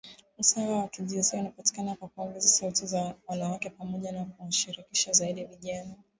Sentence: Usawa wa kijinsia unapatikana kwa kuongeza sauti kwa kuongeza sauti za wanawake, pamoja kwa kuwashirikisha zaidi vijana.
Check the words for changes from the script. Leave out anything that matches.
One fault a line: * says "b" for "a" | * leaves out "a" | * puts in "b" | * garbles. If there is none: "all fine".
* leaves out "kwa kuongeza sauti"
* says "na" for "kwa"